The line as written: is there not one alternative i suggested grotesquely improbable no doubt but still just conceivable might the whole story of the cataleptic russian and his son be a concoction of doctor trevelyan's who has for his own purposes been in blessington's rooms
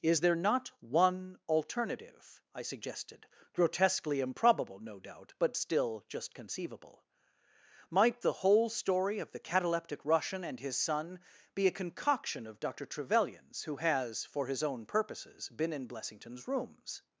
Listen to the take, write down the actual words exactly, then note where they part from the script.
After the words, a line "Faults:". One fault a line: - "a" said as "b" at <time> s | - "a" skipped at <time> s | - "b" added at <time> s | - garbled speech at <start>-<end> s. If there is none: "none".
is there not one alternative i suggested grotesquely improbable no doubt but still just conceivable might the whole story of the cataleptic russian and his son be a concoction of doctor trevelyan's who has for his own purposes been in blessington's rooms
Faults:
none